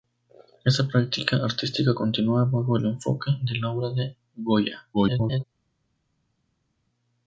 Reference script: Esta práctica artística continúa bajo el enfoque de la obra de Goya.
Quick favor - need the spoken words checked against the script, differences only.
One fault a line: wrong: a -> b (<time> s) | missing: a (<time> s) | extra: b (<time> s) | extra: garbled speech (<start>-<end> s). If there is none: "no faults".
extra: garbled speech (4.9-5.4 s)